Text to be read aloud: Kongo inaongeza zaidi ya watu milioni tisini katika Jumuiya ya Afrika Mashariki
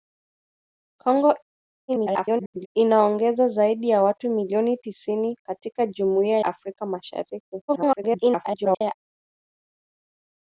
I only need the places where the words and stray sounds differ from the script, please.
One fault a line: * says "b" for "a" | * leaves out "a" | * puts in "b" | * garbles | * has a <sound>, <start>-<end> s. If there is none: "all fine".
* garbles
* leaves out "ya"
* garbles